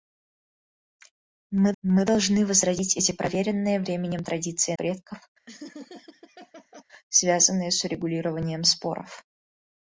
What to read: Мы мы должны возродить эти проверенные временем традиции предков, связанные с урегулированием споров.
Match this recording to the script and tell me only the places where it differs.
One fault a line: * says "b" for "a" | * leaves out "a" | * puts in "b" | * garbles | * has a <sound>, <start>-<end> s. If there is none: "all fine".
* has a laugh, 5.5-6.8 s